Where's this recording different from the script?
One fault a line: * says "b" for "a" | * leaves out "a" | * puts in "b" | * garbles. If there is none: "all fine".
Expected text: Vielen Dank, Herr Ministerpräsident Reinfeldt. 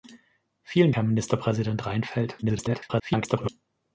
* leaves out "Dank"
* garbles